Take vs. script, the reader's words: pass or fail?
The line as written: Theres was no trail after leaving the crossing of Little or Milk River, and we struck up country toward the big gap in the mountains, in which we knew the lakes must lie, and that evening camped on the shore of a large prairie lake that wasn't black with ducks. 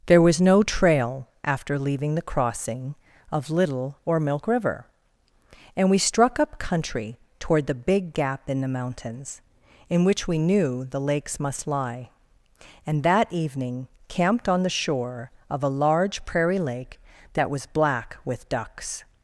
fail